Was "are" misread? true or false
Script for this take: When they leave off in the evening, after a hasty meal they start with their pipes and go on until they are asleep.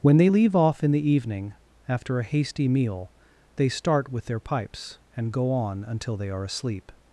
false